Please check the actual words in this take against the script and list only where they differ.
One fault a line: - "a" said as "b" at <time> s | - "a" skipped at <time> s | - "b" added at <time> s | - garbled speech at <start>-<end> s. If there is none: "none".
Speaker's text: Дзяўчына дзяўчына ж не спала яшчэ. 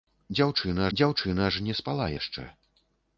none